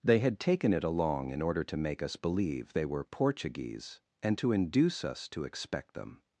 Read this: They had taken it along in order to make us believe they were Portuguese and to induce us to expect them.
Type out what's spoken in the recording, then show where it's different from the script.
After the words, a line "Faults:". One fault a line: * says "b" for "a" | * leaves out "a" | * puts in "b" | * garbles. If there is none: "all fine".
They had taken it along in order to make us believe they were Portuguese and to induce us to expect them.
Faults:
all fine